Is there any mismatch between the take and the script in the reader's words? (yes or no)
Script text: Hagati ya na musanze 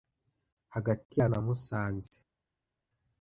no